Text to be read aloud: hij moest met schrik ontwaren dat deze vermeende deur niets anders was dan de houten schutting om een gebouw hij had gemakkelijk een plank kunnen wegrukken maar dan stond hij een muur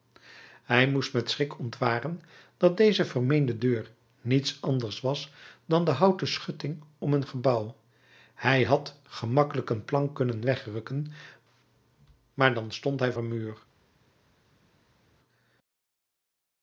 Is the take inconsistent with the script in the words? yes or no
no